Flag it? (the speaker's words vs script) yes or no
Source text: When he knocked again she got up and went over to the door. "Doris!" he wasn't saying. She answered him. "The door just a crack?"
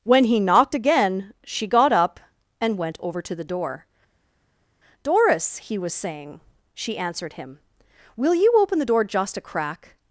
yes